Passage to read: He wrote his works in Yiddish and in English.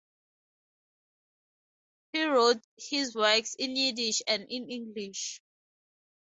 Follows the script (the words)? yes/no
yes